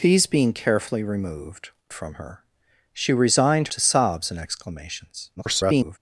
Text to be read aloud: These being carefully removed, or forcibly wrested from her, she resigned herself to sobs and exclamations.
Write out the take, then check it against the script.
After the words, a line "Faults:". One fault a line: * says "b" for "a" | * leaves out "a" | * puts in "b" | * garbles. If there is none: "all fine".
These being carefully removed, from her, she resigned to sobs and exclamations. [garbled]
Faults:
* leaves out "or forcibly wrested"
* leaves out "herself"
* garbles